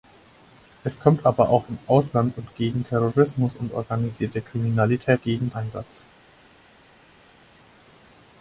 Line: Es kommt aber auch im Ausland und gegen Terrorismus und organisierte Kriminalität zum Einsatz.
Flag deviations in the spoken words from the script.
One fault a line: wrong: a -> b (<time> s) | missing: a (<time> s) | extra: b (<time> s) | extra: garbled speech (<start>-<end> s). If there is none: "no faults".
wrong: zum -> gegen (5.2 s)